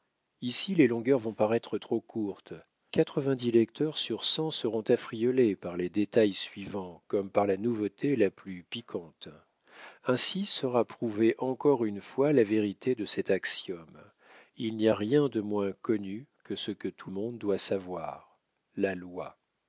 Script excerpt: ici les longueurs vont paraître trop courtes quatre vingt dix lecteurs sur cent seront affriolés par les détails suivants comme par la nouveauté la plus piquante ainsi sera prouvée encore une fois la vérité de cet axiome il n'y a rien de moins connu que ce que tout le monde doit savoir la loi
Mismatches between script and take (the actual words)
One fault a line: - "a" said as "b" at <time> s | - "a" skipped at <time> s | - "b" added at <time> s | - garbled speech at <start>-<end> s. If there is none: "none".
- "le" skipped at 17.1 s